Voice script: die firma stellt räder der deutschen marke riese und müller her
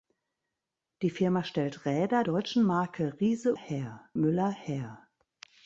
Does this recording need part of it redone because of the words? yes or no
yes